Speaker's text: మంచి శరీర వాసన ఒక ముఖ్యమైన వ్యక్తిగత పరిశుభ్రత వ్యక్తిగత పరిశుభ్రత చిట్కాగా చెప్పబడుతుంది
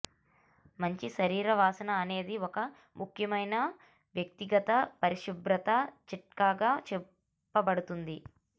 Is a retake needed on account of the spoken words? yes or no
yes